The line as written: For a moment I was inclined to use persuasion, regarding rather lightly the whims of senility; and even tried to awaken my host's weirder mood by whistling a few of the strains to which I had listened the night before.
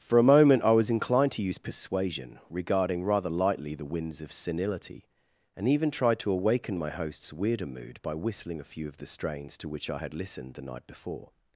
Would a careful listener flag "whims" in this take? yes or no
yes